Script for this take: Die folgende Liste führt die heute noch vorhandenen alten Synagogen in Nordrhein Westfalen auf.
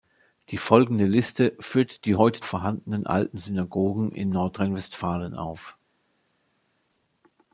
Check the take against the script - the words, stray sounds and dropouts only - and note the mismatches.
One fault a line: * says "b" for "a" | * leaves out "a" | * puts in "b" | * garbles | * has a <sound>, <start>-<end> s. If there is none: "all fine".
* leaves out "noch"